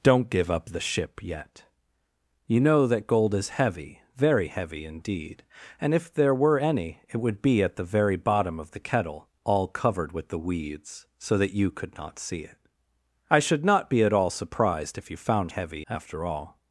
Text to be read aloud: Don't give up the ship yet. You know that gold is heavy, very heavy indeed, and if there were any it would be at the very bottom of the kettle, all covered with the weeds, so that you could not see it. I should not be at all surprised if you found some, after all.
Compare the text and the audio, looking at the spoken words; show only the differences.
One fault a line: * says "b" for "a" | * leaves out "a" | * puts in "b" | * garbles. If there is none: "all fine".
* says "heavy" for "some"